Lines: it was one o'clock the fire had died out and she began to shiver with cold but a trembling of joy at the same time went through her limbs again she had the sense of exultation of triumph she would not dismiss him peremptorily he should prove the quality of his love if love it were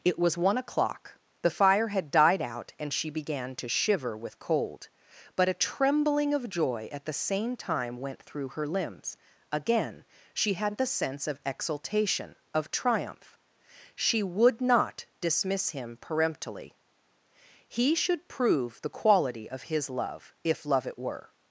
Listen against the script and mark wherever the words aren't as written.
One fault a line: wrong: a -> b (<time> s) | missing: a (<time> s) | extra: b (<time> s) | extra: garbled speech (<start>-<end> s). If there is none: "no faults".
no faults